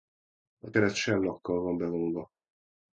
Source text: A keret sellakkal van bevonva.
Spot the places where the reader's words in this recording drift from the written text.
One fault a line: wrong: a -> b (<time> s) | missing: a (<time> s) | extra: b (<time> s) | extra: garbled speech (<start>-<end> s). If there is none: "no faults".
no faults